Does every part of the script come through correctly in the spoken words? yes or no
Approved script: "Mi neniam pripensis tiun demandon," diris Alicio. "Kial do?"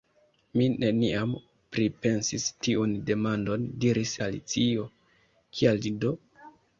yes